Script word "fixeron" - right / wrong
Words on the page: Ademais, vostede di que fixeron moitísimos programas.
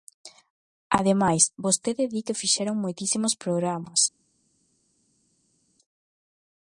right